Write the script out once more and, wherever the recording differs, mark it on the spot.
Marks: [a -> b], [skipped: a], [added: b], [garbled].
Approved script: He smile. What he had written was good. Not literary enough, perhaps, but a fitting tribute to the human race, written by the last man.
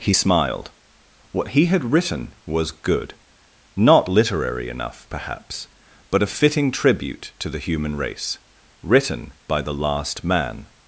He [smile. -> smiled] What he had written was good. Not literary enough, perhaps, but a fitting tribute to the human race, written by the last man.